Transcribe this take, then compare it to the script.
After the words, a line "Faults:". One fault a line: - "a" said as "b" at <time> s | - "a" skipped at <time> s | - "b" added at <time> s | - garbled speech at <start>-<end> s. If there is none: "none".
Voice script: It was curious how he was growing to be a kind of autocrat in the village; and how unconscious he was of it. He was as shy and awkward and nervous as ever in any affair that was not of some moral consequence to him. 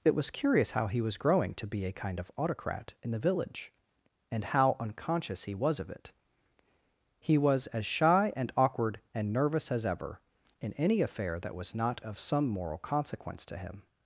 It was curious how he was growing to be a kind of autocrat in the village; and how unconscious he was of it. He was as shy and awkward and nervous as ever in any affair that was not of some moral consequence to him.
Faults:
none